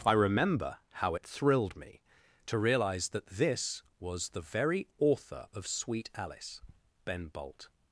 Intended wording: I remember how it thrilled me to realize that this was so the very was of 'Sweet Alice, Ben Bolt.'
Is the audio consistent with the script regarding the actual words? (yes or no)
no